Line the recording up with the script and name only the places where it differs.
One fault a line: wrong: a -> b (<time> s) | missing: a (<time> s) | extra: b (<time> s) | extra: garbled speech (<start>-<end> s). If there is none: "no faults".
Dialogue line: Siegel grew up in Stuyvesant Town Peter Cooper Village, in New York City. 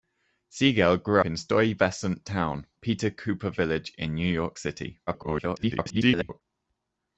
missing: up (1.2 s)
extra: garbled speech (5.1-6.4 s)